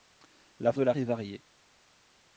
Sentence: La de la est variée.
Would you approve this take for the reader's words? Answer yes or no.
yes